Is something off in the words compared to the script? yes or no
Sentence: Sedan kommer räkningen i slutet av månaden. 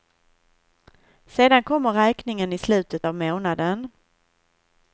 no